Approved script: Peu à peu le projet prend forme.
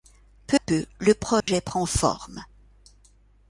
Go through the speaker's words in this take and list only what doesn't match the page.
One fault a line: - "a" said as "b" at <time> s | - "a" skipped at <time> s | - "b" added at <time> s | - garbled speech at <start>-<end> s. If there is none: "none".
- "à" skipped at 0.6 s